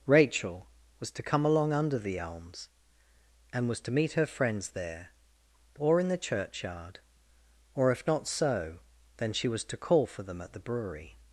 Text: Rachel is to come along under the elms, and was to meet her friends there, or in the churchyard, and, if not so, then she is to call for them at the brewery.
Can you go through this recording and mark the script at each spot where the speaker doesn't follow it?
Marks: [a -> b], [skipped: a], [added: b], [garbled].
Rachel [is -> was] to come along under the elms, and was to meet her friends there, or in the churchyard, [and, -> or] if not so, then she [is -> was] to call for them at the brewery.